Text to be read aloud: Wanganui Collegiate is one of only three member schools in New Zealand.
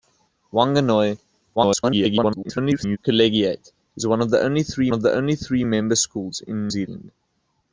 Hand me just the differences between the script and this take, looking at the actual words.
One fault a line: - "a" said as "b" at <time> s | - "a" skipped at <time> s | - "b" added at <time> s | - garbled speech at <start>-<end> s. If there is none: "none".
- garbled speech at 1.6-3.0 s
- "of only three" added at 4.9 s
- "New" skipped at 6.7 s